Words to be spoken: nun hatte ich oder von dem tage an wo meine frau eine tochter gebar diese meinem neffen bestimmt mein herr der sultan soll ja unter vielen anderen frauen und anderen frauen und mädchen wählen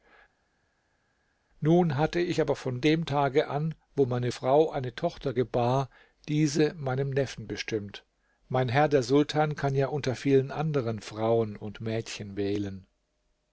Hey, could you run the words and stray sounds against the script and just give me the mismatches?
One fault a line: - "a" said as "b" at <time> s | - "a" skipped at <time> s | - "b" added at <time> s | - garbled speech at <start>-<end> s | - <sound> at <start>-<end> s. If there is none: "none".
- "oder" said as "aber" at 2.4 s
- "soll" said as "kann" at 9.6 s
- "anderen frauen und" skipped at 11.8 s